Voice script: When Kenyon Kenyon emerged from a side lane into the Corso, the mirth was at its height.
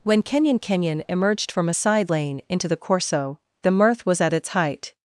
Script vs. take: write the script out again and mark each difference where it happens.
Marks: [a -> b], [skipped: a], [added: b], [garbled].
When Kenyon Kenyon emerged from a side lane into the Corso, the mirth was at its height.